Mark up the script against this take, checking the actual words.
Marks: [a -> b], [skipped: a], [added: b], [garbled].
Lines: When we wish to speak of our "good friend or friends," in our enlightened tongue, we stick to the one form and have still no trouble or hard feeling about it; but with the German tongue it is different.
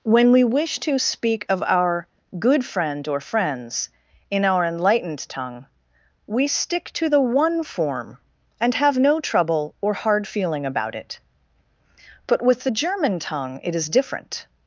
When we wish to speak of our "good friend or friends," in our enlightened tongue, we stick to the one form and have [skipped: still] no trouble or hard feeling about it; but with the German tongue it is different.